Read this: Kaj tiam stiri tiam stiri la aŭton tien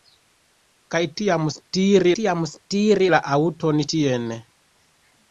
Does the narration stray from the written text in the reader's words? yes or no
no